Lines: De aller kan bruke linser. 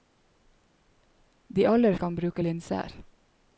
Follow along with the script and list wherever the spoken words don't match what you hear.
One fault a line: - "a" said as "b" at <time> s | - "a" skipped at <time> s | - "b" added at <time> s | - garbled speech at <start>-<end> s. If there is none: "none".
none